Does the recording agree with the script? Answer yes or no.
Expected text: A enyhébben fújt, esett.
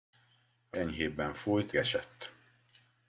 yes